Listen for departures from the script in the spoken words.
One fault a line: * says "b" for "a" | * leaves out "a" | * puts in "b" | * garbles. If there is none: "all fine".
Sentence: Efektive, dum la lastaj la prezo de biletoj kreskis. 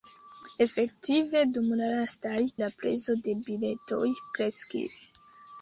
all fine